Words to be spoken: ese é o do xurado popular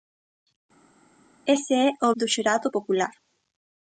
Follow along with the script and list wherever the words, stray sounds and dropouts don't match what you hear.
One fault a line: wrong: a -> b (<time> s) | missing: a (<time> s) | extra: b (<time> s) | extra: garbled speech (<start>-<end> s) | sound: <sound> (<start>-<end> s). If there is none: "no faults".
no faults